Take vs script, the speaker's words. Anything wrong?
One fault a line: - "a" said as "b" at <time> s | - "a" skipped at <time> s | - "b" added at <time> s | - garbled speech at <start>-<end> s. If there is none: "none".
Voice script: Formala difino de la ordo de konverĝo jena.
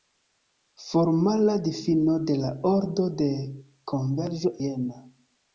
none